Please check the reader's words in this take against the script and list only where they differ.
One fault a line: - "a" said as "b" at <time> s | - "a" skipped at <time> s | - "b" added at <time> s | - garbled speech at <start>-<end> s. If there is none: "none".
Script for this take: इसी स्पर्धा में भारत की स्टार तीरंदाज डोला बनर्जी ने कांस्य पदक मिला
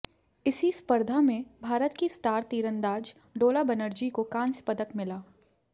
- "ने" said as "को" at 4.1 s